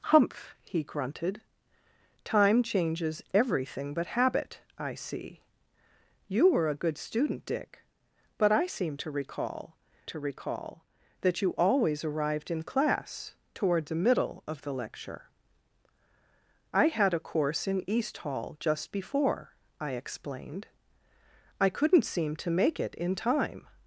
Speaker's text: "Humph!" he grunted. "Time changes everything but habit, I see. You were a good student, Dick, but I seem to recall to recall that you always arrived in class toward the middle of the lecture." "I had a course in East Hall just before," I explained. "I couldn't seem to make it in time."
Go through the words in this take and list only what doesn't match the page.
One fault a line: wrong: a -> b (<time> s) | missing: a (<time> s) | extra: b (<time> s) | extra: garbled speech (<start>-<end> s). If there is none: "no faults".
no faults